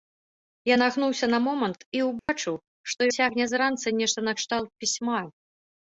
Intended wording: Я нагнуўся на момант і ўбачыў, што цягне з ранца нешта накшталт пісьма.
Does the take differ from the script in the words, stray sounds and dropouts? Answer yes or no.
yes